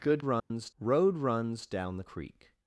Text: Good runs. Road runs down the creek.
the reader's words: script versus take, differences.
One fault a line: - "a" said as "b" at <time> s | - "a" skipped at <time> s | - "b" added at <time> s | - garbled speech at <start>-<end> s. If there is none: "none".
none